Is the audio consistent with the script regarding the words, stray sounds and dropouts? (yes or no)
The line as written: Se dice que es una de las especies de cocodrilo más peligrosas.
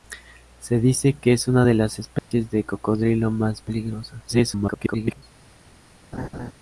no